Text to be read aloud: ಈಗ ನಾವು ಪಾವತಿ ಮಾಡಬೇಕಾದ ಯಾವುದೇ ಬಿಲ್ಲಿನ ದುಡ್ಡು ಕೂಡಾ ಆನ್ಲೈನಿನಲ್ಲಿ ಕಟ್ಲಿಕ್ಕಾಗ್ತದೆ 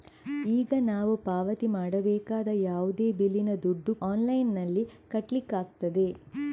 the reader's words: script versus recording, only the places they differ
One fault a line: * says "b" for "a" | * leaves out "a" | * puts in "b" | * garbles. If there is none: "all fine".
* leaves out "ಕೂಡಾ"